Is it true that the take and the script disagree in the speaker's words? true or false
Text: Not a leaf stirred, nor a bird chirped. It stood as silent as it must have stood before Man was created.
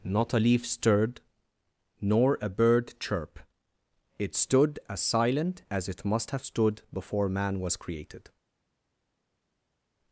true